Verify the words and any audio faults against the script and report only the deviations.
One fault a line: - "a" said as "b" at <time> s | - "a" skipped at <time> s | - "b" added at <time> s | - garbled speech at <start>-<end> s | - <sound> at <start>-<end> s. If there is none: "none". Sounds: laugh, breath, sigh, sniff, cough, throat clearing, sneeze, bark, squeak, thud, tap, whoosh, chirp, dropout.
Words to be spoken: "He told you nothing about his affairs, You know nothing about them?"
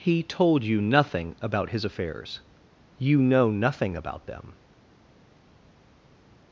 none